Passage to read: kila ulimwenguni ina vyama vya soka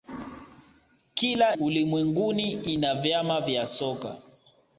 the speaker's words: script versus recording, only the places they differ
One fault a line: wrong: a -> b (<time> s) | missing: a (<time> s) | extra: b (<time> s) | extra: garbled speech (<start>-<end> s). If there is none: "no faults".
no faults